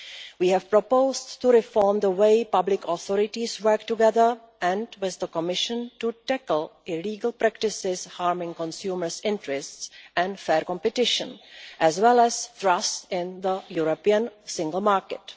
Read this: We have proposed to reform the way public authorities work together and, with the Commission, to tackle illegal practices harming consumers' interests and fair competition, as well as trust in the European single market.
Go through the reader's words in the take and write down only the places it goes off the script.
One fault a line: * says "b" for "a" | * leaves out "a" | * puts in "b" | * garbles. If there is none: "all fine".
all fine